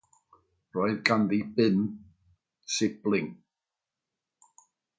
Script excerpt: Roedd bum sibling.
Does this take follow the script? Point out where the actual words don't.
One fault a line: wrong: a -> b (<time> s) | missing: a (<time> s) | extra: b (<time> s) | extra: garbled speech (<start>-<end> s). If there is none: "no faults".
extra: ganddi (1.1 s)